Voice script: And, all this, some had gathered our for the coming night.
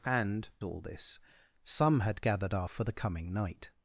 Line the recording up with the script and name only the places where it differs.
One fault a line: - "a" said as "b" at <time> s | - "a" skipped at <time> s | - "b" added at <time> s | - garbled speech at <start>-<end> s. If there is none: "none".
none